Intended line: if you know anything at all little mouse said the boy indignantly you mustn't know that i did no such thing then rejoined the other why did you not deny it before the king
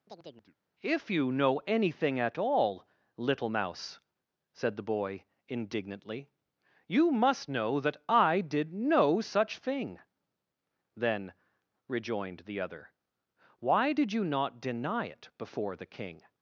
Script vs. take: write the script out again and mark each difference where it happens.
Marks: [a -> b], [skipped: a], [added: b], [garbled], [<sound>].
[chirp] if you know anything at all little mouse said the boy indignantly you [mustn't -> must] know that i did no such thing then rejoined the other why did you not deny it before the king